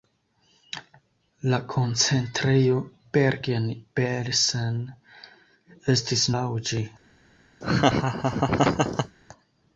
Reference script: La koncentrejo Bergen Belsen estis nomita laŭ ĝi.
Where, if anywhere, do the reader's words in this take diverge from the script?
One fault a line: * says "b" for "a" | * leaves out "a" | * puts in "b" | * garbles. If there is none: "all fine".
* leaves out "nomita"